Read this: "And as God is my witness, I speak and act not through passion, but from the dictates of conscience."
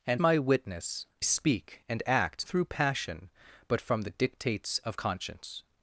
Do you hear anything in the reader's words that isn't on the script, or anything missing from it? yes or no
yes